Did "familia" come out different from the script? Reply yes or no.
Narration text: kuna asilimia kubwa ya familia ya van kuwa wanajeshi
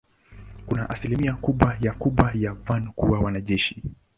yes